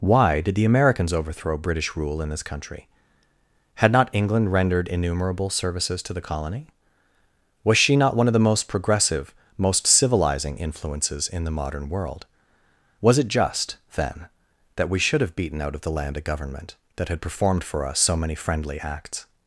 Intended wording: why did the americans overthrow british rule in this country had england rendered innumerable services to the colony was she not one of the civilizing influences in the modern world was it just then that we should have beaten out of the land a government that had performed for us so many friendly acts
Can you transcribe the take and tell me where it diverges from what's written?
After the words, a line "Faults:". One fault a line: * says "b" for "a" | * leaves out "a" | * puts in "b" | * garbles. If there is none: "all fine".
why did the americans overthrow british rule in this country had not england rendered innumerable services to the colony was she not one of the most progressive most civilizing influences in the modern world was it just then that we should have beaten out of the land a government that had performed for us so many friendly acts
Faults:
* puts in "not"
* puts in "most progressive most"